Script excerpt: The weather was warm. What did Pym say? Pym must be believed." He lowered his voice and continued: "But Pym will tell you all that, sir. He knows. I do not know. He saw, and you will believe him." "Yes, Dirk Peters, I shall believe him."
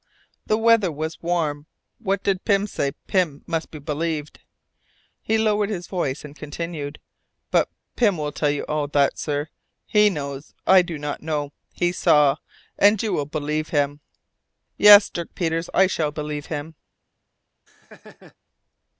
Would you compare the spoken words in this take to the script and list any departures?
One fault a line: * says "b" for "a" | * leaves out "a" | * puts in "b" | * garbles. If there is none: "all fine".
all fine